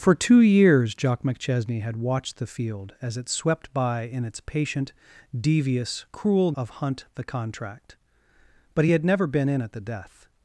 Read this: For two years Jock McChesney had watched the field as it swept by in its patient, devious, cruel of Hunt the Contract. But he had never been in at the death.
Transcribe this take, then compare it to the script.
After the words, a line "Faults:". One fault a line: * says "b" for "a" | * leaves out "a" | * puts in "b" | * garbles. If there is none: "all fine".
For two years Jock McChesney had watched the field as it swept by in its patient, devious, cruel of Hunt the Contract. But he had never been in at the death.
Faults:
all fine